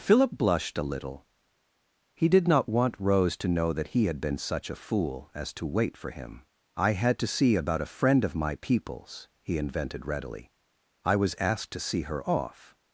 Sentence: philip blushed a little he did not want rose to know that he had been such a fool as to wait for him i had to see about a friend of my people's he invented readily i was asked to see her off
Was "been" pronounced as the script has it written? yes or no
yes